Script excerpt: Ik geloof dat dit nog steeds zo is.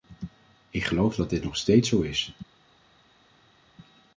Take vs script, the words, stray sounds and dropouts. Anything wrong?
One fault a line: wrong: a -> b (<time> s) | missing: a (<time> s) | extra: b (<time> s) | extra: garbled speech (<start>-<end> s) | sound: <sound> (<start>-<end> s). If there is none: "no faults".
no faults